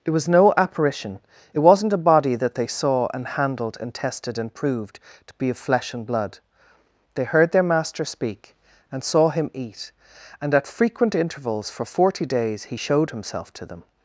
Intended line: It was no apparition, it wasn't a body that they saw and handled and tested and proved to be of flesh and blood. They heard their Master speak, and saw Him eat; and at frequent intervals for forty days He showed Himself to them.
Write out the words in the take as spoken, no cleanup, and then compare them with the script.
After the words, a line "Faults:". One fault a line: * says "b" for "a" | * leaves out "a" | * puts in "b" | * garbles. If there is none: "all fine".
It was no apparition, it wasn't a body that they saw and handled and tested and proved to be of flesh and blood. They heard their Master speak, and saw Him eat; and at frequent intervals for forty days He showed Himself to them.
Faults:
all fine